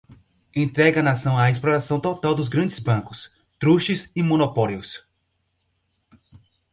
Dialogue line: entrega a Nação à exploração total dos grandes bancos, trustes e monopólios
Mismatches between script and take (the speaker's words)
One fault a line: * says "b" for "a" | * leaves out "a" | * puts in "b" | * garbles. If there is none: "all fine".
all fine